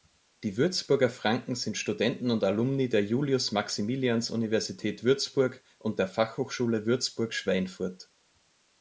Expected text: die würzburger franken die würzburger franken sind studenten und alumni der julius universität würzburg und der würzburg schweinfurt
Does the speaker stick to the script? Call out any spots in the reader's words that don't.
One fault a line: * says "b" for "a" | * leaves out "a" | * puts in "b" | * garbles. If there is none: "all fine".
* leaves out "die würzburger franken"
* puts in "maximilians"
* puts in "fachhochschule"